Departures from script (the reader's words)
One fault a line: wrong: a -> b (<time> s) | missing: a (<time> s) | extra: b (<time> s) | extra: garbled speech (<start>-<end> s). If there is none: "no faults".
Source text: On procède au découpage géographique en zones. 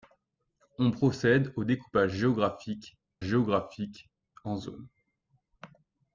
extra: géographique (3.2 s)